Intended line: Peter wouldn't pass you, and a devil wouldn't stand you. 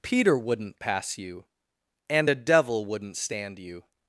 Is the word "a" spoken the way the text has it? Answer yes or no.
yes